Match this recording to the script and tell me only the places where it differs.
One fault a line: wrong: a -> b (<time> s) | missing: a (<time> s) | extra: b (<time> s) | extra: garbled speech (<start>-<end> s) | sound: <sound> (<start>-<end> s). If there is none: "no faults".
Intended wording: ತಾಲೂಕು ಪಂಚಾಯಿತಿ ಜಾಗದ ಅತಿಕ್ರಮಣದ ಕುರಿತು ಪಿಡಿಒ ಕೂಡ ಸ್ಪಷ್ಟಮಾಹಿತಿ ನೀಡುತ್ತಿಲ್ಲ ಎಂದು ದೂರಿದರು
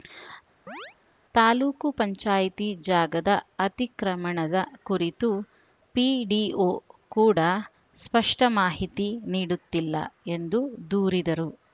sound: chirp (0.7-1.0 s)